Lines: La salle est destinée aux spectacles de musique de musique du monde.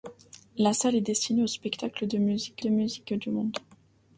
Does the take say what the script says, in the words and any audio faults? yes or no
yes